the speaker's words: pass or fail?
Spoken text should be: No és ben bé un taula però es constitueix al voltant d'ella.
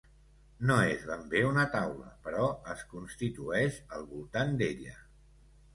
fail